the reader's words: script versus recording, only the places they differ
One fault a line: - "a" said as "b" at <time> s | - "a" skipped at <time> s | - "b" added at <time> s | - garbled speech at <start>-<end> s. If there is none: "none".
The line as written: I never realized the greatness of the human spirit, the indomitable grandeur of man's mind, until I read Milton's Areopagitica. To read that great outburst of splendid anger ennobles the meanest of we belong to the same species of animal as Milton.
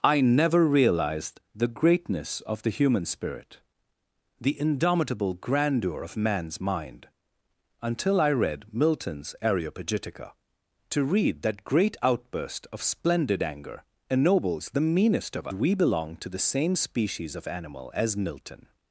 none